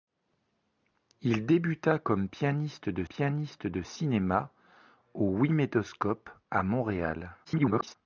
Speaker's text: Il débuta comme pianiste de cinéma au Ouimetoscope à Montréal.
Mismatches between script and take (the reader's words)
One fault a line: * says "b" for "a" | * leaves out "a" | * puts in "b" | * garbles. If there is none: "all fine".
* puts in "pianiste de"
* garbles